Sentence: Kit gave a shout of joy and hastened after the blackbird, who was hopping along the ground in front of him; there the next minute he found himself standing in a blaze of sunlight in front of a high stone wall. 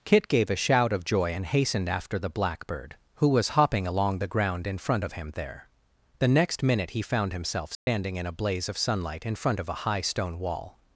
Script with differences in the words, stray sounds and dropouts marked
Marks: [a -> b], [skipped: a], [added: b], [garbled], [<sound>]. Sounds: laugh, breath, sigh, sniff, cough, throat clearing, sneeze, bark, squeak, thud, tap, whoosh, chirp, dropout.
Kit gave a shout of joy and hastened after the blackbird, who was hopping along the ground in front of him; there the next minute he found himself standing [dropout] in a blaze of sunlight in front of a high stone wall.